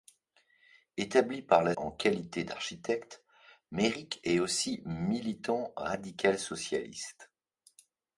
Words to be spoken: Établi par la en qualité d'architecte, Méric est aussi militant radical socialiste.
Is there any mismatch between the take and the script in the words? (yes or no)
no